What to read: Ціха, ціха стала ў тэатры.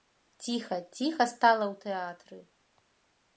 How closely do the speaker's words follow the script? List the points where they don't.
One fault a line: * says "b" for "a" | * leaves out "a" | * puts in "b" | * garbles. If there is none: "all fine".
all fine